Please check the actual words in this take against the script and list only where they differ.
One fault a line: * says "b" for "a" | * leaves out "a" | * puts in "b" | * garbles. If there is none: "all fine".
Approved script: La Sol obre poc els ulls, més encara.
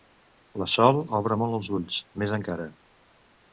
* says "molt" for "poc"